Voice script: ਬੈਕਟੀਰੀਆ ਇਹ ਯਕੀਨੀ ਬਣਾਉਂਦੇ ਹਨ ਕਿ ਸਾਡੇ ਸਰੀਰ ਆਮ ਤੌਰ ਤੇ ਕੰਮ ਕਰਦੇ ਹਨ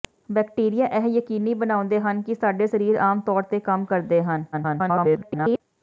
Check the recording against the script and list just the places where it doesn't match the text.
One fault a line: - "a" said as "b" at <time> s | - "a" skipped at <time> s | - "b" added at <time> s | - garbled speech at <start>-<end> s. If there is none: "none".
- garbled speech at 4.5-5.6 s